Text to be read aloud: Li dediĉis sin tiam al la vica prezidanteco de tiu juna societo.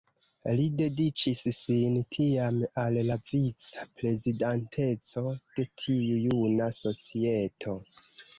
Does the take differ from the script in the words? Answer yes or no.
no